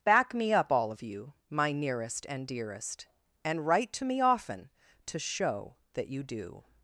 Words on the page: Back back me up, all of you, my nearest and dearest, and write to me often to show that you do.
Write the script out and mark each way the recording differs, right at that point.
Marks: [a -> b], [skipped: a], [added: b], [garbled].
Back [skipped: back] me up, all of you, my nearest and dearest, and write to me often to show that you do.